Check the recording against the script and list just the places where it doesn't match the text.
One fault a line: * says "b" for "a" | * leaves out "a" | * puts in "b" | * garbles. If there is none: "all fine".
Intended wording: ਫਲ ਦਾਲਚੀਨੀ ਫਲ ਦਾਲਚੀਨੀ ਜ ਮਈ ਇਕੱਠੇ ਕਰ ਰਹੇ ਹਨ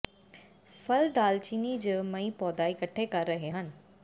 * leaves out "ਫਲ ਦਾਲਚੀਨੀ"
* puts in "ਪੌਦਾ"